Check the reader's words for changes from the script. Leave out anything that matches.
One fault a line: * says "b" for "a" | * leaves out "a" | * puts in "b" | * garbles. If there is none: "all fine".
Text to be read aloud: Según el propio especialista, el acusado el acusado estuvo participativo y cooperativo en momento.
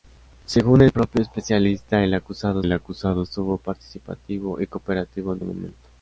all fine